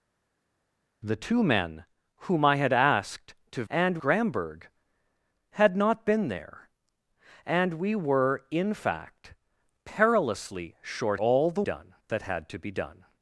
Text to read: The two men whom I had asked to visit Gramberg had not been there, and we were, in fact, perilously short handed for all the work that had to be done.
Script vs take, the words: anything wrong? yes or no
yes